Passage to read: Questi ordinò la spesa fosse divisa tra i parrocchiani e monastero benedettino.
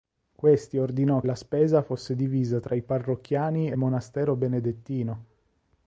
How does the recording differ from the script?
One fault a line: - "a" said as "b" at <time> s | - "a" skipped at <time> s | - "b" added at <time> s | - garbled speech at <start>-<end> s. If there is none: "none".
none